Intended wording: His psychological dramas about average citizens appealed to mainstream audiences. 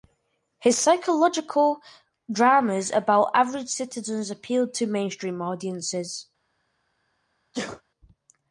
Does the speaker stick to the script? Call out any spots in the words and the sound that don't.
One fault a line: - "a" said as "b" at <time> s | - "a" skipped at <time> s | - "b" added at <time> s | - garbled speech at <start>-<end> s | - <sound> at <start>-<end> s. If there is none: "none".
- sneeze at 7.5-7.8 s